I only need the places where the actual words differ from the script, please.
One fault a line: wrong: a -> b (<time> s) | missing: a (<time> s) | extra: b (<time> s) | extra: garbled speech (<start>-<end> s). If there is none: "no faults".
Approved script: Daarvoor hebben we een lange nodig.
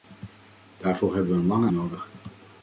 no faults